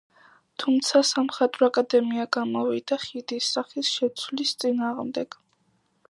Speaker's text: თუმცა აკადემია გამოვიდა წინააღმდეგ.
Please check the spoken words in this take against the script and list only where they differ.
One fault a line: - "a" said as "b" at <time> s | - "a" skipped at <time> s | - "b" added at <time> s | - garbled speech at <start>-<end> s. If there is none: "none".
- "სამხატვრო" added at 1.1 s
- "ხიდის სახის შეცვლის" added at 3.0 s